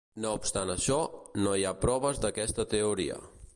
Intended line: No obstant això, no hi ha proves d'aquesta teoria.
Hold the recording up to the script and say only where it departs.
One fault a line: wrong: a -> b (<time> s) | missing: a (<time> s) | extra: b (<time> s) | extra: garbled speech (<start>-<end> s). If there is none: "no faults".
no faults